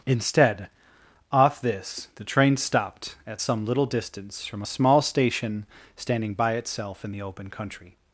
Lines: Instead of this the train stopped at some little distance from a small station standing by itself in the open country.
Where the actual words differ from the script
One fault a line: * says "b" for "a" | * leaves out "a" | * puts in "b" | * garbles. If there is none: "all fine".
* says "off" for "of"